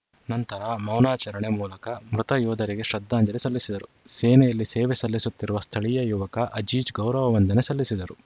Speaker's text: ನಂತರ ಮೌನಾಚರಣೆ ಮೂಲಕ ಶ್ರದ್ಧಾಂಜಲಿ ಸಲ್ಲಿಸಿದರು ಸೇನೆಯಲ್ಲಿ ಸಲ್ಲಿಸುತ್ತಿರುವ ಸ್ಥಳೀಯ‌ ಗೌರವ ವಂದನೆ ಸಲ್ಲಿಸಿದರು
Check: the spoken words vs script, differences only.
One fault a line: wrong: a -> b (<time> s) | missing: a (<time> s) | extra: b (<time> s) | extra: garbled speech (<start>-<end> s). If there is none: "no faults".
extra: ಮೃತ ಯೋಧರಿಗೆ (2.1 s)
extra: ಸೇವೆ (4.7 s)
extra: ಯುವಕ ಅಜೀಜ್ (6.0 s)